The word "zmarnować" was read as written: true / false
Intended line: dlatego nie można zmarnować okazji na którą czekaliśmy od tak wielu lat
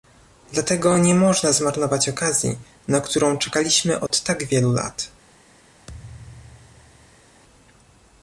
true